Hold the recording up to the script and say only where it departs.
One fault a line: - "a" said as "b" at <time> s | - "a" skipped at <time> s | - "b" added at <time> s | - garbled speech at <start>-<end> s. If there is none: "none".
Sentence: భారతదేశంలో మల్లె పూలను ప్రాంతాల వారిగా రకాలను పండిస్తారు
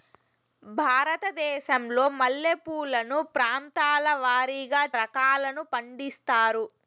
none